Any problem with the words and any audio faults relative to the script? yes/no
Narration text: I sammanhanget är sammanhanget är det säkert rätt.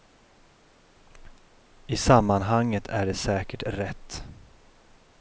yes